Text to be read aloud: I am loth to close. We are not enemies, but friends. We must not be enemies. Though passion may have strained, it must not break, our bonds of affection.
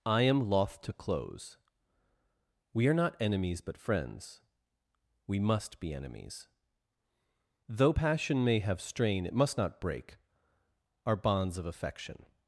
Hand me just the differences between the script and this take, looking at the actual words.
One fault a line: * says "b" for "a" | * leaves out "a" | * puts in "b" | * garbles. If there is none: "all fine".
* leaves out "not"
* says "strain" for "strained"